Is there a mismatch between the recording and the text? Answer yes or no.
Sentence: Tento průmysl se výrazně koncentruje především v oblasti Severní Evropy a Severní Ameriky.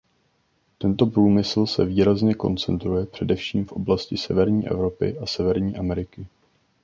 no